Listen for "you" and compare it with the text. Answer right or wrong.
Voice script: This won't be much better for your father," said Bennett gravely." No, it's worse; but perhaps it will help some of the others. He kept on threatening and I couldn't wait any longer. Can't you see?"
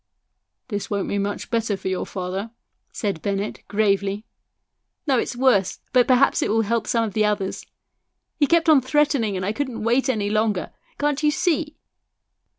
right